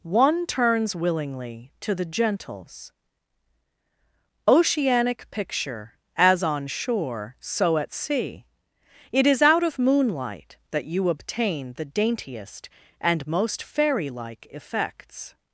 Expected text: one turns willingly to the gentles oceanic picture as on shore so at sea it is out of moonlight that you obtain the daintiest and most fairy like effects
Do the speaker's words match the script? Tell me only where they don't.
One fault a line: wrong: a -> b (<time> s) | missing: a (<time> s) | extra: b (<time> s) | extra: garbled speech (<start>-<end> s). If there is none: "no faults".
no faults